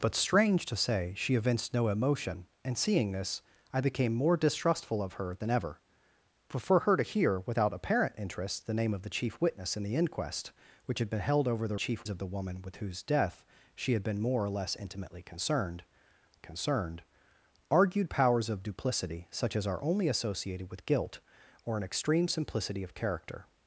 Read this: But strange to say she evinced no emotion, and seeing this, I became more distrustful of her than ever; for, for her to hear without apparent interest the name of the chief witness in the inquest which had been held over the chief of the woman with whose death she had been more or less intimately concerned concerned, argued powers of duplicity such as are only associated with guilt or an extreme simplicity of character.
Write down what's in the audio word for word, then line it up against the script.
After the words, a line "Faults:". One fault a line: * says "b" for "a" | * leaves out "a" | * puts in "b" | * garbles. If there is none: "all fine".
But strange to say she evinced no emotion, and seeing this, I became more distrustful of her than ever; for, for her to hear without apparent interest the name of the chief witness in the inquest which had been held over the chief of the woman with whose death she had been more or less intimately concerned concerned, argued powers of duplicity such as are only associated with guilt or an extreme simplicity of character.
Faults:
all fine